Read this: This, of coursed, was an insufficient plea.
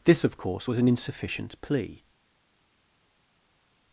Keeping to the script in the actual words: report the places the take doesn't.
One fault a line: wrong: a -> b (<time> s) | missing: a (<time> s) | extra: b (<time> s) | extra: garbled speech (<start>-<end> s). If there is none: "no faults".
wrong: coursed -> course (0.4 s)